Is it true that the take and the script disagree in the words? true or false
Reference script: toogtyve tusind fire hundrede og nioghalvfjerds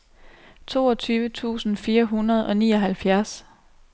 false